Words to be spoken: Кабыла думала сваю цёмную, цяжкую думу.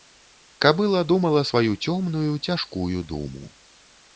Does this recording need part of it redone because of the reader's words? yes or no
no